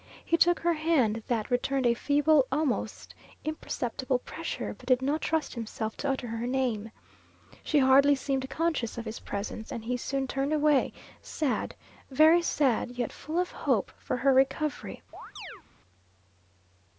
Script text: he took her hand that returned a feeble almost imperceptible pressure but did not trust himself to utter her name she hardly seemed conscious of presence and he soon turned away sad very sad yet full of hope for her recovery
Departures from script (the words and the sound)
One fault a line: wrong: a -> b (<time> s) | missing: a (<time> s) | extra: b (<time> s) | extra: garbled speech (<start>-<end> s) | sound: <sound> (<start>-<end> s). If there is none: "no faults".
extra: his (9.1 s)
sound: chirp (15.1-15.6 s)